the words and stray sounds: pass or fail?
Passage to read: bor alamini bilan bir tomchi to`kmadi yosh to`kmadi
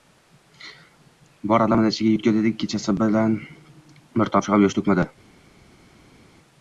fail